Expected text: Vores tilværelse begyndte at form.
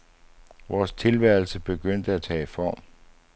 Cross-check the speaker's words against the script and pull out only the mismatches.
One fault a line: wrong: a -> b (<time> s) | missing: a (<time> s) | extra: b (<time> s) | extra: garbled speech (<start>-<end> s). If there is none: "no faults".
extra: tage (2.2 s)